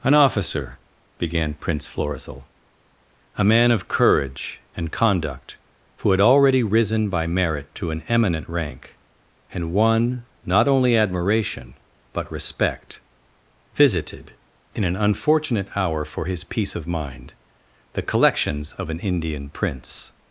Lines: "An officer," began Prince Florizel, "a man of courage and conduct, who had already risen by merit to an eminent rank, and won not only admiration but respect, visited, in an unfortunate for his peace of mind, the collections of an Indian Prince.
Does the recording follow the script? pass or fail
fail